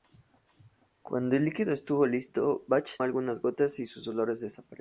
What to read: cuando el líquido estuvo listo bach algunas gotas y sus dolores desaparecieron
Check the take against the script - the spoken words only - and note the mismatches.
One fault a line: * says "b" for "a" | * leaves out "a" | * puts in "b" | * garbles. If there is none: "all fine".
all fine